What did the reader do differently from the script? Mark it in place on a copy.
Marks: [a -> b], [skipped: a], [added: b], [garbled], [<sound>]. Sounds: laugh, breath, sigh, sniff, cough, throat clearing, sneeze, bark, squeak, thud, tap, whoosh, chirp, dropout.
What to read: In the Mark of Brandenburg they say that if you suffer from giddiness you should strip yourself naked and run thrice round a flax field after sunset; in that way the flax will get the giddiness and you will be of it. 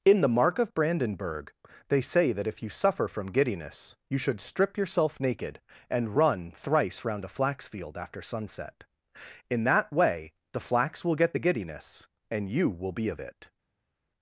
In the Mark of Brandenburg they say that if you suffer from giddiness you should strip yourself naked and run thrice round a flax field after sunset; in that way the flax will get the giddiness and you will be of it.